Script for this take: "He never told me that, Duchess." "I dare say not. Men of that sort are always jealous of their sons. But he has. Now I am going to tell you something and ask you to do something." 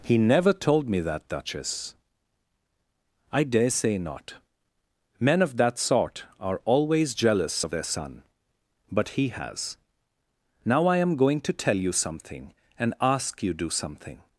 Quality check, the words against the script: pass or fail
fail